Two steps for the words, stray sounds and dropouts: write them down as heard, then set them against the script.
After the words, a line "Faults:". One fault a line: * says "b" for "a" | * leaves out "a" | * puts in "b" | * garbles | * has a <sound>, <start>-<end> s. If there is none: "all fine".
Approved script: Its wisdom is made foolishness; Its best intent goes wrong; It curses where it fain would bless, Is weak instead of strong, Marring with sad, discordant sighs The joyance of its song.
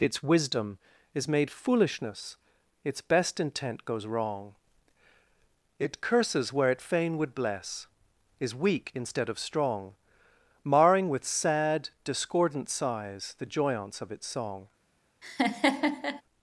Its wisdom is made foolishness; Its best intent goes wrong; It curses where it fain would bless, Is weak instead of strong, Marring with sad, discordant sighs The joyance of its song.
Faults:
* has a laugh, 15.2-16.2 s